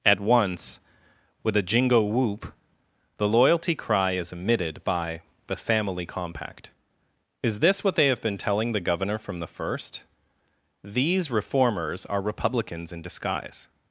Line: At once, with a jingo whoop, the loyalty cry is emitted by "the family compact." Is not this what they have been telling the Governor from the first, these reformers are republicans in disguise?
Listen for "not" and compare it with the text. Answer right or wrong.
wrong